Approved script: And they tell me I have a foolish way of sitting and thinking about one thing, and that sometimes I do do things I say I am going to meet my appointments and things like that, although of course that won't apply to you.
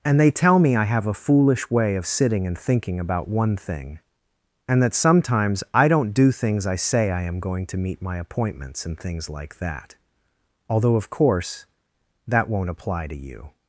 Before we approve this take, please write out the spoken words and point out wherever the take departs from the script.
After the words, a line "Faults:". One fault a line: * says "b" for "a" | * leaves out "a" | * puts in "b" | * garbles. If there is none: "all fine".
And they tell me I have a foolish way of sitting and thinking about one thing, and that sometimes I don't do things I say I am going to meet my appointments and things like that, although of course that won't apply to you.
Faults:
* says "don't" for "do"